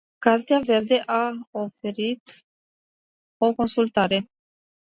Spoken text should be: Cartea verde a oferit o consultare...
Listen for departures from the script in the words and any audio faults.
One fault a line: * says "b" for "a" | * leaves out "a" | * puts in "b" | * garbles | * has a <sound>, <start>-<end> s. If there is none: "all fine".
all fine